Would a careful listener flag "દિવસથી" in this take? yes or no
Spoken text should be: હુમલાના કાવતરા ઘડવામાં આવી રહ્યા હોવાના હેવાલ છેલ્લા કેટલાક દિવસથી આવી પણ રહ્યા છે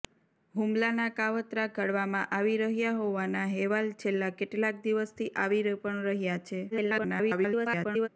no